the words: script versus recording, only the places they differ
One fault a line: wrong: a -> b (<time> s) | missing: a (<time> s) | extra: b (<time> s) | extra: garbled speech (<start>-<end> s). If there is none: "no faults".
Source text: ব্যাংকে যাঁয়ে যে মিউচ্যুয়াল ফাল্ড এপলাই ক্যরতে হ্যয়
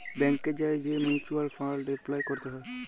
no faults